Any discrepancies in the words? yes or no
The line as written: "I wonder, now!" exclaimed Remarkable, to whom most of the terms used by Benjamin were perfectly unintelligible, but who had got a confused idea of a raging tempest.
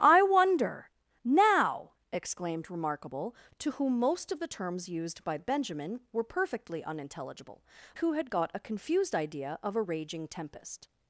yes